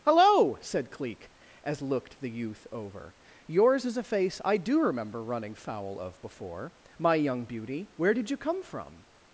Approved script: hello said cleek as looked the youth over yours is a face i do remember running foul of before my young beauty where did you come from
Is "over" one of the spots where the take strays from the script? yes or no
no